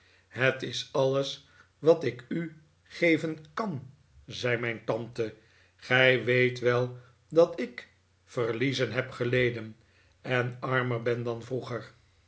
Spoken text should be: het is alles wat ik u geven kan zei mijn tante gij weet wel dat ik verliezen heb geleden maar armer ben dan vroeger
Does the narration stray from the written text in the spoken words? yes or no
yes